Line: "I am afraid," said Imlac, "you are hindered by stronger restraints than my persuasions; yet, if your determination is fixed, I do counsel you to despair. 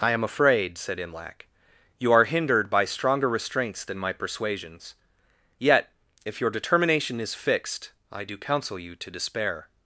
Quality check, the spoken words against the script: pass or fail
pass